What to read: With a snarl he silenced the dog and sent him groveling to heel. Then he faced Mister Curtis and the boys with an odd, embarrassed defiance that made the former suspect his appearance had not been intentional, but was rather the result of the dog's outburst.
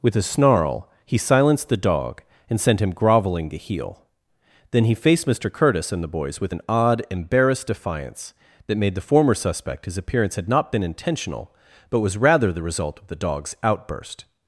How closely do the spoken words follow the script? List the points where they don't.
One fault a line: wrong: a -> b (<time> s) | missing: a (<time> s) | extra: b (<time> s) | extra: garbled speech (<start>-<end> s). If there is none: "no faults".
no faults